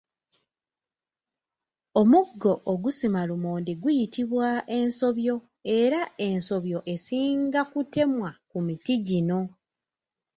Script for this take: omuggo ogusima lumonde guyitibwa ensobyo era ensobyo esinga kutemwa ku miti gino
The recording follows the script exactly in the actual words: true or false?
true